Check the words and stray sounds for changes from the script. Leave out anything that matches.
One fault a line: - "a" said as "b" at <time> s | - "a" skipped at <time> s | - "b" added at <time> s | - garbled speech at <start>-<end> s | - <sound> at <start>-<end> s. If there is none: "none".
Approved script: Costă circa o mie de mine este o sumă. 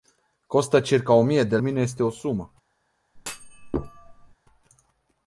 - thud at 3.1-4.4 s